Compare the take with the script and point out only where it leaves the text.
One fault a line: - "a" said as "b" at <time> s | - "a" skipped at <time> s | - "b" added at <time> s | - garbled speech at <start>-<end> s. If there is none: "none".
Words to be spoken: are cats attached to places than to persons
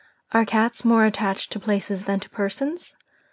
- "more" added at 0.8 s